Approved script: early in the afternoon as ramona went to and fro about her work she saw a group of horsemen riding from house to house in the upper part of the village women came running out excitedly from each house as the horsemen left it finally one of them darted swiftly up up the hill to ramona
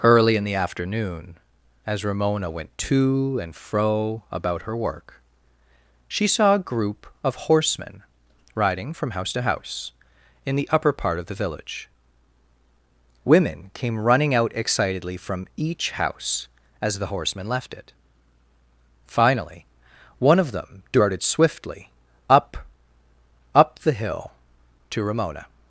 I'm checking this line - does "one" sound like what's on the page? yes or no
yes